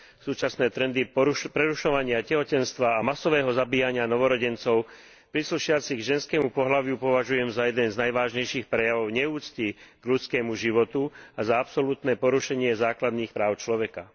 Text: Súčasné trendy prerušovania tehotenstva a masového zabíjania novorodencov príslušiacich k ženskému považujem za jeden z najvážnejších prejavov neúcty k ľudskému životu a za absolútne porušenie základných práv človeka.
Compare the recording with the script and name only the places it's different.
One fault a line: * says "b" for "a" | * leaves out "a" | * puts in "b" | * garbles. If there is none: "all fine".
* puts in "pohlaviu"